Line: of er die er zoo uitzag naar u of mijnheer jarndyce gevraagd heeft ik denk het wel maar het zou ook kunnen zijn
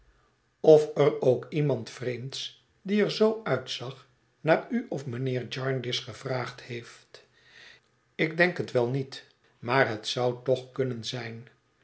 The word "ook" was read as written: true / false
false